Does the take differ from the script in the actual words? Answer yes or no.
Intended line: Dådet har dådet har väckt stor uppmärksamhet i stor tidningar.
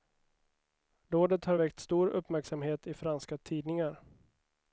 yes